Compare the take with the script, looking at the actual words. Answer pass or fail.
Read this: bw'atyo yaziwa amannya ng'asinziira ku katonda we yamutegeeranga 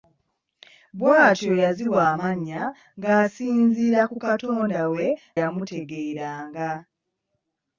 pass